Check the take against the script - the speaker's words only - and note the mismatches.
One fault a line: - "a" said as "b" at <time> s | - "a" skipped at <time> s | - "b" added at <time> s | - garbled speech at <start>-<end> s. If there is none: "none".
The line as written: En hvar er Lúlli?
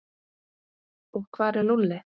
- "En" said as "Og" at 1.1 s